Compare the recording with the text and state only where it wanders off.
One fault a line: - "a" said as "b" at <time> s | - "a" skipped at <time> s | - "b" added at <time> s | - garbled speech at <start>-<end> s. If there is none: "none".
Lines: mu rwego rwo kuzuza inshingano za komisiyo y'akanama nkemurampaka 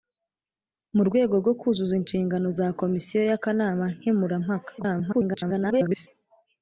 - garbled speech at 4.8-6.1 s